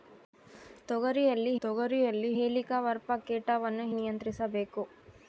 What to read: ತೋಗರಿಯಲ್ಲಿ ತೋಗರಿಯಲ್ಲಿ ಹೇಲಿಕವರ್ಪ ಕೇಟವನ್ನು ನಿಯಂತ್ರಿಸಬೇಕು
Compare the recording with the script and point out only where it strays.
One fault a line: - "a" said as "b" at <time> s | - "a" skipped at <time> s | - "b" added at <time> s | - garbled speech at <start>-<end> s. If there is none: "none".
none